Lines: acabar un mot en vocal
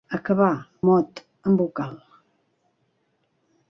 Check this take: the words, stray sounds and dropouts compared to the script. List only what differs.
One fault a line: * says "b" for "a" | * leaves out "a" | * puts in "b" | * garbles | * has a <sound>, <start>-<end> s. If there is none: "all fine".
* leaves out "un"